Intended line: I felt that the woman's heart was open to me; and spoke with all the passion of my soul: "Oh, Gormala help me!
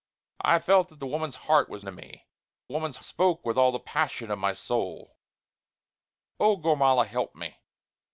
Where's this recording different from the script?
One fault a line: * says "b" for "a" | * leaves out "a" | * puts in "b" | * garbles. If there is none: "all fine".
* leaves out "open"
* says "woman's" for "and"